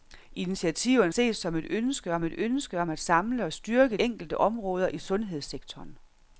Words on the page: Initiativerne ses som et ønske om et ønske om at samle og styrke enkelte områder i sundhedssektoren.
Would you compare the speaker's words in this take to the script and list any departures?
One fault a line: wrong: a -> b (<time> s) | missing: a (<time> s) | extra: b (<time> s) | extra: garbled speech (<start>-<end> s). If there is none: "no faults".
no faults